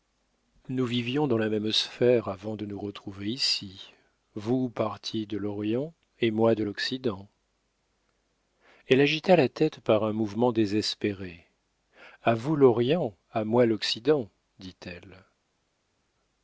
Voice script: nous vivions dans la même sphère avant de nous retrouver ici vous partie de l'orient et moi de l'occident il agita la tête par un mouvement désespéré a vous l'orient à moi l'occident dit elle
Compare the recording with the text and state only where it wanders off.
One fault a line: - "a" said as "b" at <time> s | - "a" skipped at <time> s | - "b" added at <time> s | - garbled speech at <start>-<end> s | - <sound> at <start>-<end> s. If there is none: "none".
- "il" said as "elle" at 8.9 s